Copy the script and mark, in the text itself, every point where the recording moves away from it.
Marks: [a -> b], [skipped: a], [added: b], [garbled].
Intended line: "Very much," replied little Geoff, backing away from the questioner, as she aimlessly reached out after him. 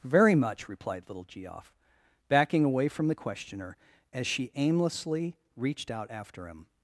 "Very much," replied little Geoff, backing away from the questioner, as she aimlessly reached out after him.